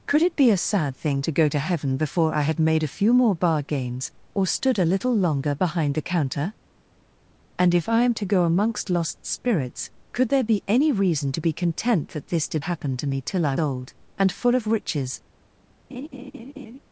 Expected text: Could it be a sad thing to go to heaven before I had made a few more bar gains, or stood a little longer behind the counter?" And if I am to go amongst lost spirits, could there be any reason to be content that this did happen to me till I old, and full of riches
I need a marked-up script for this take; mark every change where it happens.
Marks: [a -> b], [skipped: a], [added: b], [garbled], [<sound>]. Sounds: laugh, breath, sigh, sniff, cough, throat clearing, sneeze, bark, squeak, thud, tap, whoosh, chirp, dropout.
Could it be a sad thing to go to heaven before I had made a few more bar gains, or stood a little longer behind the counter?" And if I am to go amongst lost spirits, could there be any reason to be content that this did happen to me till I old, and full of riches [laugh]